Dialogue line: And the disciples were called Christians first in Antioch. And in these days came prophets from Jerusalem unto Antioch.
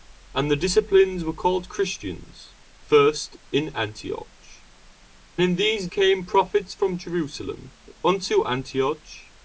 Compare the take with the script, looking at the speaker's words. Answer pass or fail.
fail